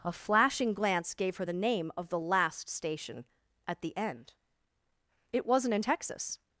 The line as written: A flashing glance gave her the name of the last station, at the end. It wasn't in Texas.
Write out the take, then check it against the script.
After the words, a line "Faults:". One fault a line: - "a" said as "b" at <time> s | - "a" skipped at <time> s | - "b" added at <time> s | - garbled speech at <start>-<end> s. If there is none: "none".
A flashing glance gave her the name of the last station, at the end. It wasn't in Texas.
Faults:
none